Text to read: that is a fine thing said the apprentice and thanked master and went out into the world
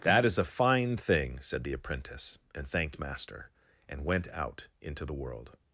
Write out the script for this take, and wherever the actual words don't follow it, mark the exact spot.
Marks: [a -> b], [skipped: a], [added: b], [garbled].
that is a fine thing said the apprentice and thanked master and went out into the world